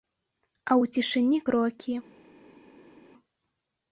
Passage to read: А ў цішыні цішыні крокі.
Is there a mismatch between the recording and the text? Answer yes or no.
yes